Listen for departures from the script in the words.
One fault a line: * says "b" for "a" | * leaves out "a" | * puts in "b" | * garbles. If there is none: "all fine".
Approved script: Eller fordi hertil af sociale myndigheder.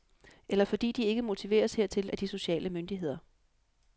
* puts in "de ikke motiveres"
* puts in "de"